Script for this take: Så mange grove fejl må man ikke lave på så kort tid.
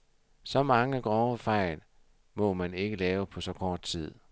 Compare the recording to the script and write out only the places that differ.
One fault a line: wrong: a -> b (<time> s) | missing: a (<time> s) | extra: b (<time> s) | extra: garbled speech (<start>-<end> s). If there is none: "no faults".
no faults